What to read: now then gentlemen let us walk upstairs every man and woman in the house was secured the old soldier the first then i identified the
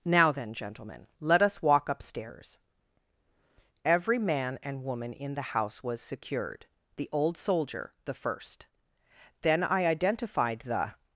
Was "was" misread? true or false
false